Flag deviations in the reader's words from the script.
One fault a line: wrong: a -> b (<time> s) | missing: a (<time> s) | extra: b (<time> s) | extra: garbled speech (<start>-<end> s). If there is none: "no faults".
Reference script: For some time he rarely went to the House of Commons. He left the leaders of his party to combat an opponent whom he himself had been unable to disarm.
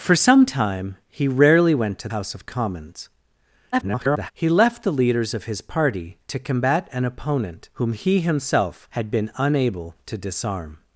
missing: the (2.1 s)
extra: garbled speech (3.7-4.3 s)